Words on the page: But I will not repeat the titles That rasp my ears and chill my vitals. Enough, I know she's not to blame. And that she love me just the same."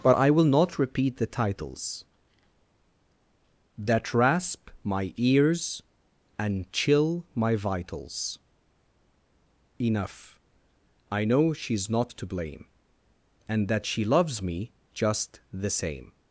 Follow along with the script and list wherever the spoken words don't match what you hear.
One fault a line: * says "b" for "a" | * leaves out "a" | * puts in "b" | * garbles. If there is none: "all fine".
* says "loves" for "love"